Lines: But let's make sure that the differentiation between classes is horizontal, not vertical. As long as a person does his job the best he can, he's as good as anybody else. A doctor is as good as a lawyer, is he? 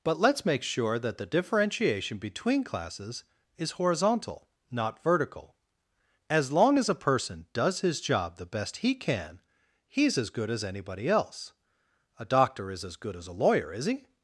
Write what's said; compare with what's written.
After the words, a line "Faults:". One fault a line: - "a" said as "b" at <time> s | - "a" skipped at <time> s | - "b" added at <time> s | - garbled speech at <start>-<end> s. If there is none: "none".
But let's make sure that the differentiation between classes is horizontal, not vertical. As long as a person does his job the best he can, he's as good as anybody else. A doctor is as good as a lawyer, is he?
Faults:
none